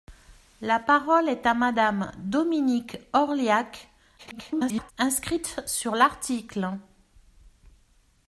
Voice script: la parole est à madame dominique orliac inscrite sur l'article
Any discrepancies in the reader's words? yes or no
yes